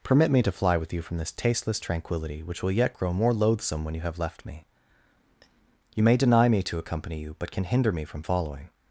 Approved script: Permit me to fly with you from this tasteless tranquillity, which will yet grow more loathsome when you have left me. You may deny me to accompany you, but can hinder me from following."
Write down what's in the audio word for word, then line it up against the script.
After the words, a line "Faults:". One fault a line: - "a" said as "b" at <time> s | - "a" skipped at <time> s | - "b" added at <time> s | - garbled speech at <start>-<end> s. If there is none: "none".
Permit me to fly with you from this tasteless tranquillity, which will yet grow more loathsome when you have left me. You may deny me to accompany you, but can hinder me from following."
Faults:
none